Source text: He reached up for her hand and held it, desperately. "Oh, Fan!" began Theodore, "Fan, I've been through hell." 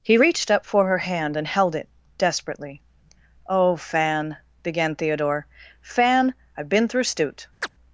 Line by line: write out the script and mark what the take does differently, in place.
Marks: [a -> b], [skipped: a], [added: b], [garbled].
He reached up for her hand and held it, desperately. "Oh, Fan!" began Theodore, "Fan, I've been through [hell." -> stute]